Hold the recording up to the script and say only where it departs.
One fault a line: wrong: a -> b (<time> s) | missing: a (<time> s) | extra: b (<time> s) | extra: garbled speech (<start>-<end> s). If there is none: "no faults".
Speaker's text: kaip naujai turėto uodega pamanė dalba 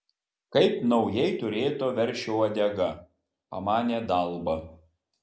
extra: veršio (2.0 s)